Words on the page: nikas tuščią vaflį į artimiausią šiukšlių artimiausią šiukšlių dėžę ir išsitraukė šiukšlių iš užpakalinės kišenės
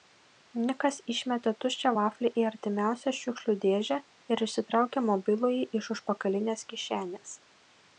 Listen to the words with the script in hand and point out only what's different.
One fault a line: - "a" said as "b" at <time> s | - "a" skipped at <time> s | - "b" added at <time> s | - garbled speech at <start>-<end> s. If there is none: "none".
- "išmetė" added at 1.1 s
- "artimiausią šiukšlių" skipped at 3.6 s
- "šiukšlių" said as "mobilųjį" at 5.1 s